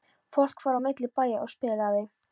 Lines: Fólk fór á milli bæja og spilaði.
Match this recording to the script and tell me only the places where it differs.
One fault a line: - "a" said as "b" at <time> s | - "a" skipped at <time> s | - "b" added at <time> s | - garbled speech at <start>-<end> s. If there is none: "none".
none